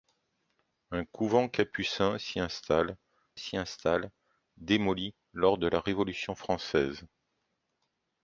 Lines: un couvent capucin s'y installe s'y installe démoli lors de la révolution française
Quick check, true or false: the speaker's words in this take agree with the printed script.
true